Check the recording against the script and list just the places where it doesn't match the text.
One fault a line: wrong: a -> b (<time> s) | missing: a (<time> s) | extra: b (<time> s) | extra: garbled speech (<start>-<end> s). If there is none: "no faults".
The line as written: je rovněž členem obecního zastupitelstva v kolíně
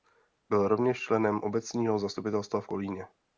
wrong: je -> byl (0.5 s)